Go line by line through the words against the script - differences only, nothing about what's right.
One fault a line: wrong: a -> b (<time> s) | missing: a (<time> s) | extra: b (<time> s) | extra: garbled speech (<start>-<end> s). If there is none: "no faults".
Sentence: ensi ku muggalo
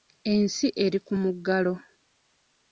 extra: eri (0.8 s)